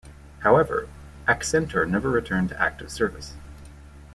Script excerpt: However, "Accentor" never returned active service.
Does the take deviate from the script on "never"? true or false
false